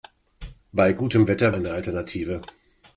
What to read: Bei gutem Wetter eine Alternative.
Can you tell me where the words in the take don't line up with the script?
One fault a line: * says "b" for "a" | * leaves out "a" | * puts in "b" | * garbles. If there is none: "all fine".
all fine